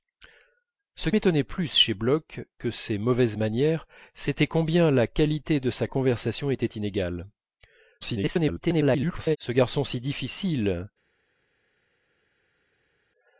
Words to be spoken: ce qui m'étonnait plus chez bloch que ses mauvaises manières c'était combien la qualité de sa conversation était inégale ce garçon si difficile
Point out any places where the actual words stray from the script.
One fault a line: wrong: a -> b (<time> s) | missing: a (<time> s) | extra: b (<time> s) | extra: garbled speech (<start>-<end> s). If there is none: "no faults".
missing: qui (1.1 s)
extra: garbled speech (8.0-9.4 s)